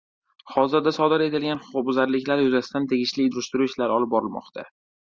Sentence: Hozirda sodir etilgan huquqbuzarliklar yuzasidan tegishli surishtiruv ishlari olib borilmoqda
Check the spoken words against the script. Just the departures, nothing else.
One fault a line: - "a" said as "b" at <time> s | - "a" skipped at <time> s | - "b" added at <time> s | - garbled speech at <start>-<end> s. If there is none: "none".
none